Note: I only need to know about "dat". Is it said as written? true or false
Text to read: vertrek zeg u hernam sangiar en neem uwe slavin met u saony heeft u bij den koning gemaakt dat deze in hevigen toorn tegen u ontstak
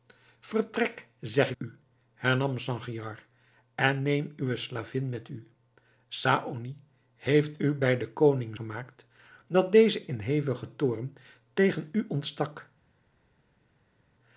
true